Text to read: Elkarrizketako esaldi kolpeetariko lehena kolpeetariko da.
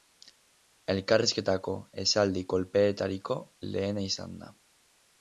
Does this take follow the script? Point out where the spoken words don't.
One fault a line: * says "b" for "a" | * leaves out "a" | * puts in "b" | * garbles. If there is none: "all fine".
* says "izan" for "kolpeetariko"